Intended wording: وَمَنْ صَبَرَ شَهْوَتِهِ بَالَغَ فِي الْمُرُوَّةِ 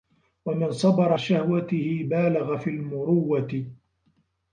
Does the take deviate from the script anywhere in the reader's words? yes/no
no